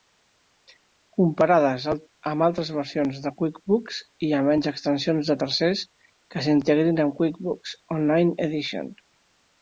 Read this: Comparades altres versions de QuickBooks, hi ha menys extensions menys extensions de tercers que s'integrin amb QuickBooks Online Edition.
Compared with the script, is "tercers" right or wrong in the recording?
right